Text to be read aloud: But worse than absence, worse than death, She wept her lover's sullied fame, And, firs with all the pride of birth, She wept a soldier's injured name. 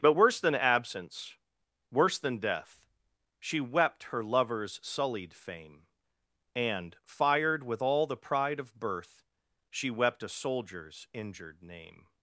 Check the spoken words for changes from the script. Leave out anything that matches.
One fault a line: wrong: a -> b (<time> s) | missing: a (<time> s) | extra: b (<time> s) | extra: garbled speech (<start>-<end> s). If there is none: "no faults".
wrong: firs -> fired (7.0 s)